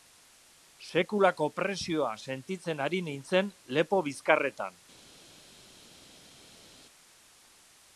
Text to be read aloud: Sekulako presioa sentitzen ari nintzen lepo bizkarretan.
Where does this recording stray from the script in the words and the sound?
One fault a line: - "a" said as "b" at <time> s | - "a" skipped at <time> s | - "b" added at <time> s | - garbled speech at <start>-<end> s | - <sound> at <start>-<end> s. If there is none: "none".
none